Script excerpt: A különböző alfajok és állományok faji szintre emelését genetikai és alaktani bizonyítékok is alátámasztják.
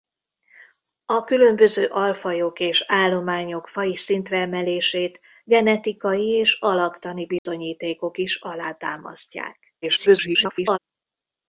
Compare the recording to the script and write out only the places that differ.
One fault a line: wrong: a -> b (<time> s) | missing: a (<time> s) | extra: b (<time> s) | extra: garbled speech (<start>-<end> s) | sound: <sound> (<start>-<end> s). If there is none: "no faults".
sound: dropout (7.4-7.5 s)
extra: garbled speech (9.8-10.8 s)